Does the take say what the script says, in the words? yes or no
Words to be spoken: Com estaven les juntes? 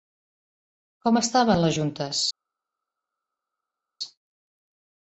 yes